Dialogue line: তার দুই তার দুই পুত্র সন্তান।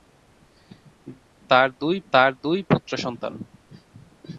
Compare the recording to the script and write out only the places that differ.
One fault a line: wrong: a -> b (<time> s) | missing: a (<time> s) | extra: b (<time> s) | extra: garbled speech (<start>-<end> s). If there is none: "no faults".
no faults